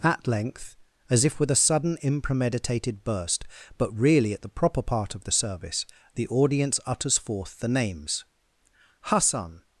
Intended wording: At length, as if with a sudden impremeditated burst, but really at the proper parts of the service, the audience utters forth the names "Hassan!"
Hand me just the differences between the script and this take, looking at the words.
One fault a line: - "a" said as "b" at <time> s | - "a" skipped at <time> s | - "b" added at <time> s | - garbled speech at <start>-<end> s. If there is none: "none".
- "parts" said as "part" at 4.8 s